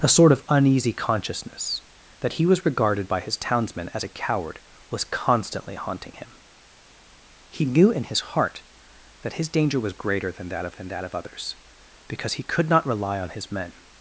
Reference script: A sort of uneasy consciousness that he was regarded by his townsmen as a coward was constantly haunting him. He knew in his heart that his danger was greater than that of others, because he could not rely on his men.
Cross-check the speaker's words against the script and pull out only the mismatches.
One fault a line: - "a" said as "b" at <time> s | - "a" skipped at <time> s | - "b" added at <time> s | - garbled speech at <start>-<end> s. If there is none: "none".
- "than that of" added at 10.7 s